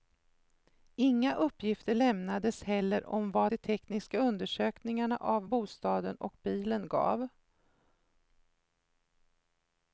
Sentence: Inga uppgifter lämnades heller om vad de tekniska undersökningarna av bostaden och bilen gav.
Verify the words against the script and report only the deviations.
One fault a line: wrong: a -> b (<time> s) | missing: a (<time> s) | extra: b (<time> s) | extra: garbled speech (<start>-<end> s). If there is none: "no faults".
no faults